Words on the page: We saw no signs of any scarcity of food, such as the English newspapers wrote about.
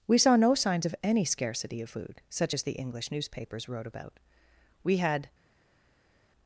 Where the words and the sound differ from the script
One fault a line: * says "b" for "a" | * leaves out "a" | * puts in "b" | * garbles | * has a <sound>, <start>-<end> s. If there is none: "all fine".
* puts in "We had"